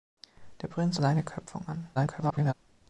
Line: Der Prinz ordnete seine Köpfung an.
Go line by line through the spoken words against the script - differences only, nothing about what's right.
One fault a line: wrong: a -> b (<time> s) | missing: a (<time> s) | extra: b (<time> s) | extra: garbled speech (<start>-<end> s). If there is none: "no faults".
missing: ordnete (1.0 s)
extra: garbled speech (2.0-2.5 s)